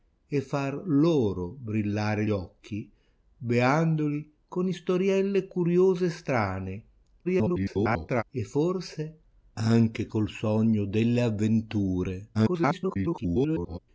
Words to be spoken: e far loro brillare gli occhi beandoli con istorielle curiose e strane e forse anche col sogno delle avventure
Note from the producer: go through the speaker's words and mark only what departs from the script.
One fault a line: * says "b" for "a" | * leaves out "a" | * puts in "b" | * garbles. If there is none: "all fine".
* leaves out "gli"
* garbles
* garbles